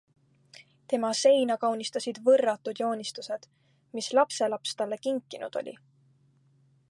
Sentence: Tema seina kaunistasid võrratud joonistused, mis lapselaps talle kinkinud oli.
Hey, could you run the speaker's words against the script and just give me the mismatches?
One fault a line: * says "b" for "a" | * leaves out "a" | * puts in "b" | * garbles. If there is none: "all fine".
all fine